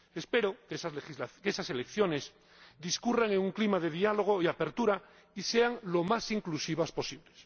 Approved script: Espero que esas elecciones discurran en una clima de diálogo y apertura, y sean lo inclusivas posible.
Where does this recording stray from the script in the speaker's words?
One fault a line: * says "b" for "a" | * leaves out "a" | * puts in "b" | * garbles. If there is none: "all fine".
* says "un" for "una"
* puts in "más"